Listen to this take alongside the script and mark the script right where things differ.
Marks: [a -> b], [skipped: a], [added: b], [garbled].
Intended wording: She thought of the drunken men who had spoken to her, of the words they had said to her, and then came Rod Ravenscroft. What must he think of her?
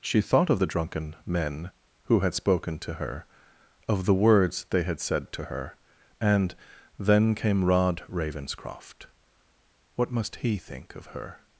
She thought of the drunken men who had spoken to her, of the words they had said to her, and then came Rod Ravenscroft. What must he think of her?